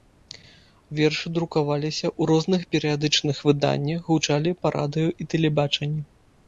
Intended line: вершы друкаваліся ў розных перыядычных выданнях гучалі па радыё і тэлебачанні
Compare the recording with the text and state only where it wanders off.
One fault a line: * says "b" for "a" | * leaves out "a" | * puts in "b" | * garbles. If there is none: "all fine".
all fine